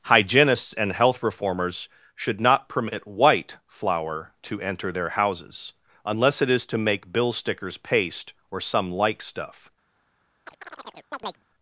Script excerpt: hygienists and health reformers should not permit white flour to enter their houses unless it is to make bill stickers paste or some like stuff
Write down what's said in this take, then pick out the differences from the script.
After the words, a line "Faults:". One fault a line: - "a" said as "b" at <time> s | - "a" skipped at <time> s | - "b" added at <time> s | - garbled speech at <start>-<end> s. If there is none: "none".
hygienists and health reformers should not permit white flour to enter their houses unless it is to make bill stickers paste or some like stuff
Faults:
none